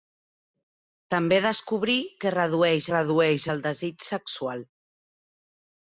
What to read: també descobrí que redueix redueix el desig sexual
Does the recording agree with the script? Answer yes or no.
yes